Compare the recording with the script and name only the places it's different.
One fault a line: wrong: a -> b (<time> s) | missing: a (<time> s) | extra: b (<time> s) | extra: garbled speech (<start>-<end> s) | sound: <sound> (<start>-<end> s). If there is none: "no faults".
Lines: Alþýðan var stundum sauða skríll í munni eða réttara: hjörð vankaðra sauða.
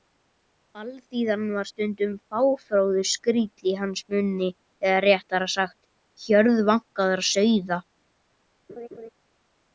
wrong: sauða -> fáfróður (2.3 s)
extra: hans (3.8 s)
extra: sagt (5.6 s)
sound: laugh (8.7-9.1 s)